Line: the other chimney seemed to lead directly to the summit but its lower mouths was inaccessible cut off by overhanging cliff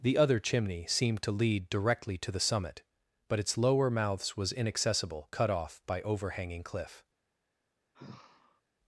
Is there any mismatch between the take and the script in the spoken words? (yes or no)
no